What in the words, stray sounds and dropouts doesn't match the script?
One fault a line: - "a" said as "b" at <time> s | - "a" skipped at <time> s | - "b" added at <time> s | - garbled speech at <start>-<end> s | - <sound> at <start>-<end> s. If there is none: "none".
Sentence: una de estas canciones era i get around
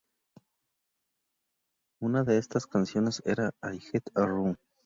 none